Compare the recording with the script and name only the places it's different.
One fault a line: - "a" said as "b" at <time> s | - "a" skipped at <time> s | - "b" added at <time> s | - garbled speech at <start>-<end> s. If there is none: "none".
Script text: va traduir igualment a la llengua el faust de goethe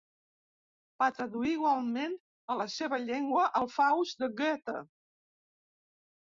- "seva" added at 2.8 s